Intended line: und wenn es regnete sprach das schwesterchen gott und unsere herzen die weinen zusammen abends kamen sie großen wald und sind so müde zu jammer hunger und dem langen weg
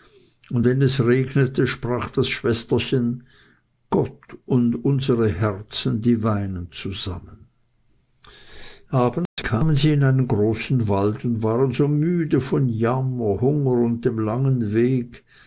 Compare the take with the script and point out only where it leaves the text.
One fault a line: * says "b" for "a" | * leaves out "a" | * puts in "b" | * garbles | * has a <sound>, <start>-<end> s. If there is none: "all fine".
* has a dropout, 9.3-9.4 s
* puts in "in einen"
* says "waren" for "sind"
* says "von" for "zu"